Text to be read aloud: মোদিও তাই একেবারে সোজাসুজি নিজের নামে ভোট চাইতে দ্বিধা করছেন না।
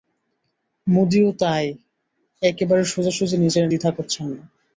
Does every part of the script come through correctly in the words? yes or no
no